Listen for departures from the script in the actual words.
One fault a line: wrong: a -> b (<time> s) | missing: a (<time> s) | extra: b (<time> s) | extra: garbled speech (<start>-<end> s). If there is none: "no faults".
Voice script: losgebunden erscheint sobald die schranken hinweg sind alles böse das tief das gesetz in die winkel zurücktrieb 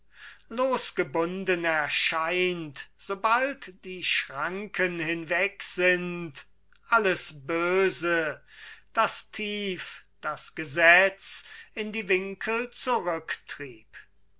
no faults